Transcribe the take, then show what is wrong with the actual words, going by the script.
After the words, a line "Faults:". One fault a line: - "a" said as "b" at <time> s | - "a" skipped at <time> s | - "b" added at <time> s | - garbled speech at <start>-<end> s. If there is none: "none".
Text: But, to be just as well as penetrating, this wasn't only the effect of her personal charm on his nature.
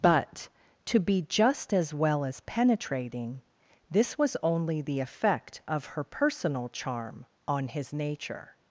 But, to be just as well as penetrating, this was only the effect of her personal charm on his nature.
Faults:
- "wasn't" said as "was" at 4.2 s